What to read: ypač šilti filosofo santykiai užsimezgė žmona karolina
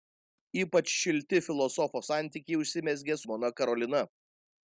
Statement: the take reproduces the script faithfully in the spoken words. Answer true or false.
true